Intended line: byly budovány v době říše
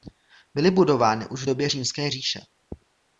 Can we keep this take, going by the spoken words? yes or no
no